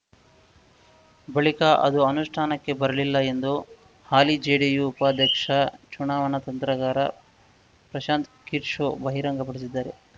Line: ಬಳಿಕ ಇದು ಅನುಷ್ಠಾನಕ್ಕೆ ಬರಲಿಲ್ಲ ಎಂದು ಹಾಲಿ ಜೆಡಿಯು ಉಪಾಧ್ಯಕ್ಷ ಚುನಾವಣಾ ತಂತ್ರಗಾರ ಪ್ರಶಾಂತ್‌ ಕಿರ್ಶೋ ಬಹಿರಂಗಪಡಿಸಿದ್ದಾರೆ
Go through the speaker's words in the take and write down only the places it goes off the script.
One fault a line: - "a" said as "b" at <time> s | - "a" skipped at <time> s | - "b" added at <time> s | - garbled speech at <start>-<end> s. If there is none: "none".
- "ಇದು" said as "ಅದು" at 1.8 s